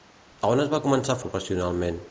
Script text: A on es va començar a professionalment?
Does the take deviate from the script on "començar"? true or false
false